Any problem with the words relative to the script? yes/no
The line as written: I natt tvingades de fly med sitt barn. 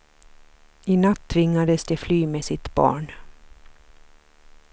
no